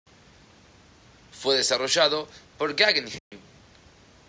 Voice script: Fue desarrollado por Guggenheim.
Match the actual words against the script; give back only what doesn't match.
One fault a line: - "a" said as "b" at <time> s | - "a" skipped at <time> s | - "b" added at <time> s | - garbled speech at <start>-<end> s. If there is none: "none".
none